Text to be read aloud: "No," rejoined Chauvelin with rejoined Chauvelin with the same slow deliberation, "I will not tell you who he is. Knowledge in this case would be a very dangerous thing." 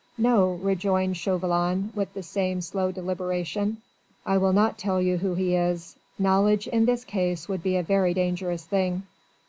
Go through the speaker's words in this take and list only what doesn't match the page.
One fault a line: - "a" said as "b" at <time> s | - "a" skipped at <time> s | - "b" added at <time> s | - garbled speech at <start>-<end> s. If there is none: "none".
- "rejoined Chauvelin with" skipped at 2.1 s